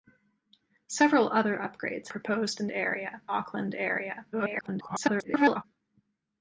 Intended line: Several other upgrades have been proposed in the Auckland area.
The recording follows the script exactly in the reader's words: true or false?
false